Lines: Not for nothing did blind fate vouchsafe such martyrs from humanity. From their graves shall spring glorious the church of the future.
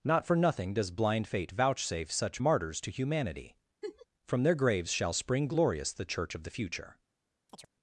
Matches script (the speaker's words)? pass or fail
fail